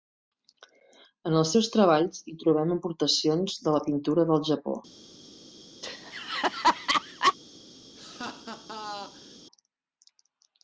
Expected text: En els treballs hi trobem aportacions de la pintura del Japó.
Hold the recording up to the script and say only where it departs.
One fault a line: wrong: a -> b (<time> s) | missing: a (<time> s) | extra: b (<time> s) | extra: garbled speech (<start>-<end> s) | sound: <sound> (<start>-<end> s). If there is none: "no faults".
extra: seus (1.5 s)
sound: laugh (5.8-7.4 s)
sound: laugh (8.0-9.4 s)